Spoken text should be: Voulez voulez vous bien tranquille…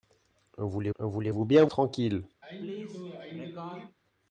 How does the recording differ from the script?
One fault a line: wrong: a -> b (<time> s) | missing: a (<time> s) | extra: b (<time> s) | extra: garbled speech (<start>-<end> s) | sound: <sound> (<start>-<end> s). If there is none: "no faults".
sound: sneeze (2.4-4.0 s)